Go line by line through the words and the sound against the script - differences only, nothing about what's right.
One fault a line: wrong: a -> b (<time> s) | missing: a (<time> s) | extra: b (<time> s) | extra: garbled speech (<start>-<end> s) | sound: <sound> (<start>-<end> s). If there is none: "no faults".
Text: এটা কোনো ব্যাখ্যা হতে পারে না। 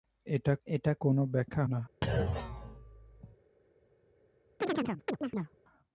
extra: এটা (0.7 s)
missing: হতে পারে (1.6 s)
sound: thud (2.0-3.4 s)
sound: chirp (4.6-5.6 s)